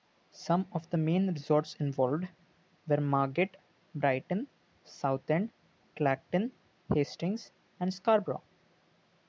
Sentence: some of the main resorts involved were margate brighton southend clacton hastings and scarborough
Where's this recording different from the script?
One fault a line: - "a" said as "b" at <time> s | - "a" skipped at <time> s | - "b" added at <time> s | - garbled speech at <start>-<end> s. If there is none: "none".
none